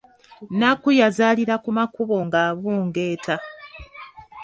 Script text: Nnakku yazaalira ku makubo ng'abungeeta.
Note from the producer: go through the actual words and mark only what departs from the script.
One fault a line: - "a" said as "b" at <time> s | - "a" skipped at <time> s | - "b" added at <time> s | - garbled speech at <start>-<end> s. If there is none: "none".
none